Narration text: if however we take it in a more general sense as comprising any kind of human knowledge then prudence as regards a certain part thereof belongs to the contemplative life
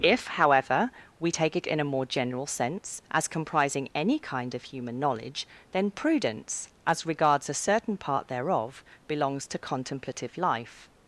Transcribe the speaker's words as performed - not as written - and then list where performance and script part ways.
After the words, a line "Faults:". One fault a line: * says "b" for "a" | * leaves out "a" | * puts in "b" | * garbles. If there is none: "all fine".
if however we take it in a more general sense as comprising any kind of human knowledge then prudence as regards a certain part thereof belongs to contemplative life
Faults:
* leaves out "the"